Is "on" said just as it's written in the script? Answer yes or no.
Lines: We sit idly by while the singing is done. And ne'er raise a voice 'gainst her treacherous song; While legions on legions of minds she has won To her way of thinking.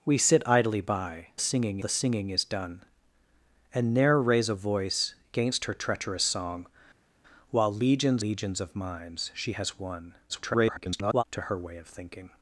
no